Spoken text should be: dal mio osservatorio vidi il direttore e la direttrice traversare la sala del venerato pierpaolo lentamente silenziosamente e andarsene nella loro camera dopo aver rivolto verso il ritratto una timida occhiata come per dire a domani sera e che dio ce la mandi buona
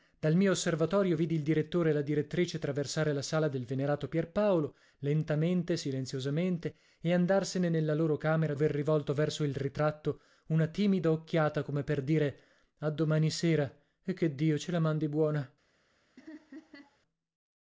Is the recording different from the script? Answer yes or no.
yes